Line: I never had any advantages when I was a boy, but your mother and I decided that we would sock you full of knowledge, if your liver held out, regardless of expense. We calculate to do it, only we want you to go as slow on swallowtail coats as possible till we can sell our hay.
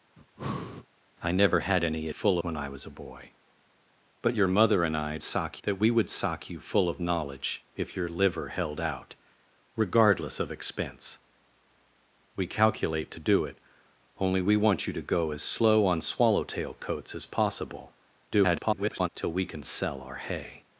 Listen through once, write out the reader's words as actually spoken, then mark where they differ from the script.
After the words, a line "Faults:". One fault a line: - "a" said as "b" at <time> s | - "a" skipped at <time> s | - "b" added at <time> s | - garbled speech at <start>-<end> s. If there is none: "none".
I never had any full when I was a boy, but your mother and I sock that we would sock you full of knowledge, if your liver held out, regardless of expense. We calculate to do it, only we want you to go as slow on swallowtail coats as possible [garbled] till we can sell our hay.
Faults:
- "advantages" said as "full" at 2.1 s
- "decided" said as "sock" at 5.2 s
- garbled speech at 18.3-19.1 s